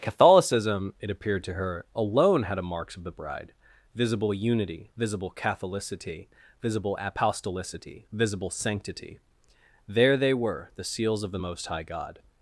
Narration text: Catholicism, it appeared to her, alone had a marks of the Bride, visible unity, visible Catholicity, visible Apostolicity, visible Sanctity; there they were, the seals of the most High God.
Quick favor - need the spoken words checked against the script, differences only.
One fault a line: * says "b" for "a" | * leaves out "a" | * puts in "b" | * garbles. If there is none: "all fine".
all fine